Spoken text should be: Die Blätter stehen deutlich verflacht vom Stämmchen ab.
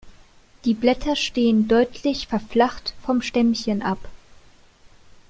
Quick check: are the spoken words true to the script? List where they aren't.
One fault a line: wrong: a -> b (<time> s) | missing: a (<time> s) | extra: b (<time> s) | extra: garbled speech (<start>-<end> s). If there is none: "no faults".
no faults